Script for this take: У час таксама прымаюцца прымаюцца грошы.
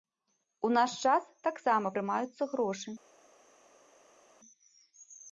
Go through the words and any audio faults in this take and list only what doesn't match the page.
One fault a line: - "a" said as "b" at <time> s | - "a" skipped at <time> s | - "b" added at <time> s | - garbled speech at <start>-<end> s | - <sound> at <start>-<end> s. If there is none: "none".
- "наш" added at 0.8 s
- "прымаюцца" skipped at 2.4 s